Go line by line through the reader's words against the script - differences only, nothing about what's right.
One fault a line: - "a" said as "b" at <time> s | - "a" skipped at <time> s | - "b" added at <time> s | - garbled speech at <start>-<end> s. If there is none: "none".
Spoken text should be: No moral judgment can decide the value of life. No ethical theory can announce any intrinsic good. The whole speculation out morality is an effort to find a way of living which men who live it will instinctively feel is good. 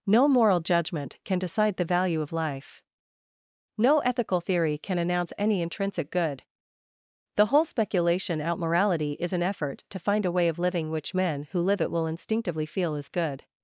none